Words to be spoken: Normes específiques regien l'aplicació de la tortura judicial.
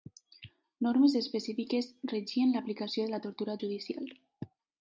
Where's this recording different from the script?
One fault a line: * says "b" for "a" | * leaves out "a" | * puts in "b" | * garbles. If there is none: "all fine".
all fine